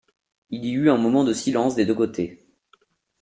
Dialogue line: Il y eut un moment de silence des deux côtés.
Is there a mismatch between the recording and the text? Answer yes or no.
no